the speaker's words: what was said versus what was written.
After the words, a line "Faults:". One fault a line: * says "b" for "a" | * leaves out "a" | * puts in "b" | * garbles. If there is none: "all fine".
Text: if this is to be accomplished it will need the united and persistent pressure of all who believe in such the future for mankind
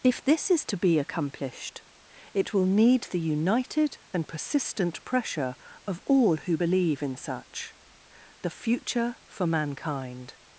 if this is to be accomplished it will need the united and persistent pressure of all who believe in such the future for mankind
Faults:
all fine